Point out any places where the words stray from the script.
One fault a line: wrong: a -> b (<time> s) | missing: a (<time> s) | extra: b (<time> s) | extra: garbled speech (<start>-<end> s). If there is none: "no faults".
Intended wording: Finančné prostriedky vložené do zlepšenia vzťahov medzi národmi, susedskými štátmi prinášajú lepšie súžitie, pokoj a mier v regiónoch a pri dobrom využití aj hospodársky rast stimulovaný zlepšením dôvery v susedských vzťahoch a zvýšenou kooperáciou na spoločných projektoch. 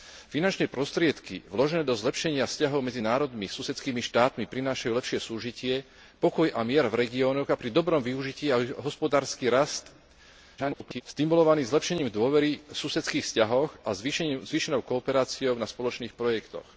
extra: garbled speech (10.6-11.0 s)